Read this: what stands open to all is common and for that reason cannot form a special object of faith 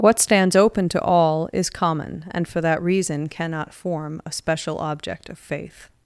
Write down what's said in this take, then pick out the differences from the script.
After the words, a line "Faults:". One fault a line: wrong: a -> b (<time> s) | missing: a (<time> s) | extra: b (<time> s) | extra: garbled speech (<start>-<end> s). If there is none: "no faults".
what stands open to all is common and for that reason cannot form a special object of faith
Faults:
no faults